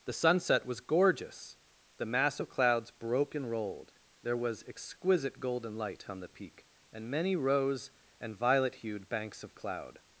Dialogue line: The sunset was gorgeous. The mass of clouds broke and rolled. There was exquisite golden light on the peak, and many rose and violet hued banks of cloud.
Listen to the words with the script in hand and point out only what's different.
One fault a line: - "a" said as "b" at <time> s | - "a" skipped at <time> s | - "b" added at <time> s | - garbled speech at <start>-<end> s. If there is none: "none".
none